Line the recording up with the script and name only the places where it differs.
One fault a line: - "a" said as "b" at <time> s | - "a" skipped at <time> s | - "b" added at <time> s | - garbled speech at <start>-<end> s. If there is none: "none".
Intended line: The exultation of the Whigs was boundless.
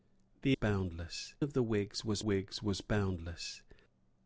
- "exultation" said as "boundless" at 0.5 s
- "Whigs was" added at 2.2 s